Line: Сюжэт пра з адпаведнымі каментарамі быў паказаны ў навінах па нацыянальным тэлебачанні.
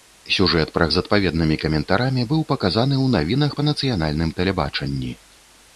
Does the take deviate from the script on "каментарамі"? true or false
false